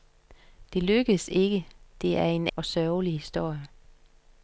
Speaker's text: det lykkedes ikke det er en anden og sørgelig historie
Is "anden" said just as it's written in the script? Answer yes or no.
no